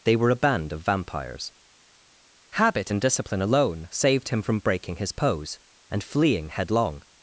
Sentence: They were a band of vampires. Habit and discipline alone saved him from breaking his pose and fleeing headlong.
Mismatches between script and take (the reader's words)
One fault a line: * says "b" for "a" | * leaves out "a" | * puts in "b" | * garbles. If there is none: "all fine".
all fine